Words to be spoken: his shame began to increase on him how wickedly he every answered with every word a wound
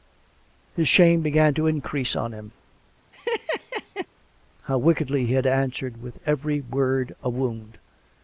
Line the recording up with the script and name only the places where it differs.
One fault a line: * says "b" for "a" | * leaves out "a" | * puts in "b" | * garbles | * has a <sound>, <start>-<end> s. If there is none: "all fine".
* has a laugh, 3.1-4.1 s
* says "had" for "every"